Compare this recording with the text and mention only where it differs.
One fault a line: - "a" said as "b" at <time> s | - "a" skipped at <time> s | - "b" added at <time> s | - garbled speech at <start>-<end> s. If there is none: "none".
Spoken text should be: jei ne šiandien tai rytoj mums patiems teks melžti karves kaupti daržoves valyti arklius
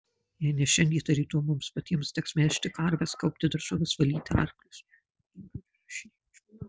none